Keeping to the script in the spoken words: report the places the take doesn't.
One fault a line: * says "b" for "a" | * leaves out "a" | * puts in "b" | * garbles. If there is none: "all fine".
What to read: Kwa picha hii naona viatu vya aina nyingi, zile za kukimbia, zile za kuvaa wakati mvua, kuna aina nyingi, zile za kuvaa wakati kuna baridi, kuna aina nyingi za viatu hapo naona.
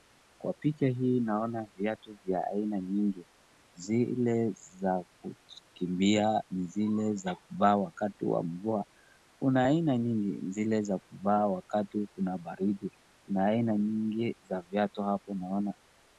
* puts in "wa"